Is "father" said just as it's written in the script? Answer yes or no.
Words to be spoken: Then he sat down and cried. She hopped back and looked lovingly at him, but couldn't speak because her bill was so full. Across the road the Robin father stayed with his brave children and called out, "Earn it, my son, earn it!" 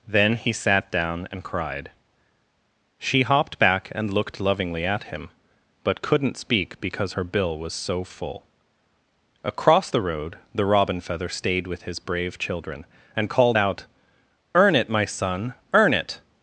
no